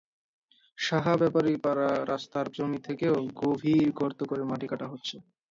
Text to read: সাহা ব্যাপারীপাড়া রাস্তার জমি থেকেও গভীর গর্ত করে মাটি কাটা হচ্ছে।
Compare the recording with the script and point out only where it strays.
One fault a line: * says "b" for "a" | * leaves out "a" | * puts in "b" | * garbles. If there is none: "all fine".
all fine